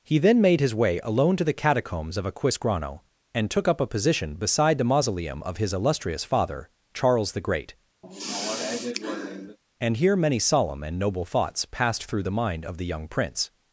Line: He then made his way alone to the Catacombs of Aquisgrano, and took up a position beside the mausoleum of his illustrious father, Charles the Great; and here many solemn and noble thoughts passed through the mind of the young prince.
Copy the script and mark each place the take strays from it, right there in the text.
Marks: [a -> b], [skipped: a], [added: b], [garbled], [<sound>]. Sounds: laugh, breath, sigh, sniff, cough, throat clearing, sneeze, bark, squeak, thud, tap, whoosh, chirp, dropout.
He then made his way alone to the Catacombs of Aquisgrano, and took up a position beside the mausoleum of his illustrious father, Charles the Great; [sigh] and here many solemn and noble thoughts passed through the mind of the young prince.